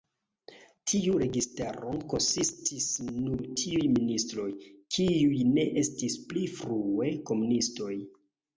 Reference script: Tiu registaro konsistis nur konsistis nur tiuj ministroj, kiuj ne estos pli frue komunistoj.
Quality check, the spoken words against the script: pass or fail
fail